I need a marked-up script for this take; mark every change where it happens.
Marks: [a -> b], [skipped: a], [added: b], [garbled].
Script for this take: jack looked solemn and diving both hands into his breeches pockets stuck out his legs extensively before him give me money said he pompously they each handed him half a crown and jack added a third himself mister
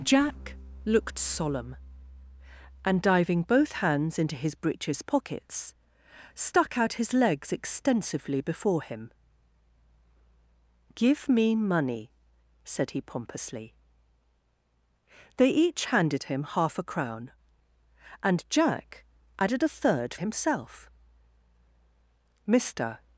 jack looked solemn and diving both hands into his breeches pockets stuck out his legs extensively before him give me money said he pompously they each handed him half a crown and jack added a third himself mister